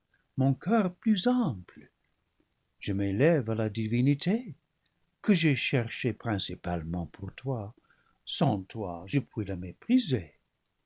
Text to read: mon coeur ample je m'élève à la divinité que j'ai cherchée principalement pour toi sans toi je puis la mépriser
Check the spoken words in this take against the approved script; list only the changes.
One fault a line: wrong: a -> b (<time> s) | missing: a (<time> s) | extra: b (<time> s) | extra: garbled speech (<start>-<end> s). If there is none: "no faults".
extra: plus (0.9 s)